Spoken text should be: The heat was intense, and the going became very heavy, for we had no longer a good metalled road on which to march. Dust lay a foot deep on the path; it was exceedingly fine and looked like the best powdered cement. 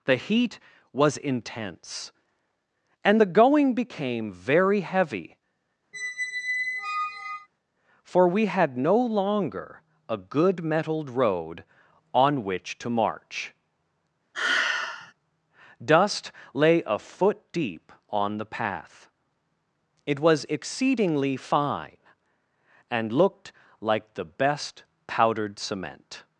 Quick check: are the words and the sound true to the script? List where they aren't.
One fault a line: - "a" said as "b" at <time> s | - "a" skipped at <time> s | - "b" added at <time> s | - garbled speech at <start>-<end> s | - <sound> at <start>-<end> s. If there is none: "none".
- squeak at 5.9-7.5 s
- sigh at 14.3-15.1 s